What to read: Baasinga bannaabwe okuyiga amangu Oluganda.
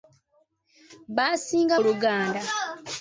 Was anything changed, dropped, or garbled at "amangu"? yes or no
yes